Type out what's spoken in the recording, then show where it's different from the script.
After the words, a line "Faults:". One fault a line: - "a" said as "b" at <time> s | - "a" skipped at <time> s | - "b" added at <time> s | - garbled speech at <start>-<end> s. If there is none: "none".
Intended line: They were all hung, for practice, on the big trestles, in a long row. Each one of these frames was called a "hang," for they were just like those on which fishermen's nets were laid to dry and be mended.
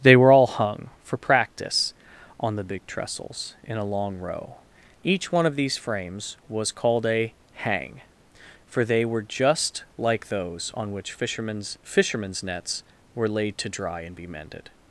They were all hung, for practice, on the big trestles, in a long row. Each one of these frames was called a "hang," for they were just like those on which fishermen's fishermen's nets were laid to dry and be mended.
Faults:
- "fishermen's" added at 11.8 s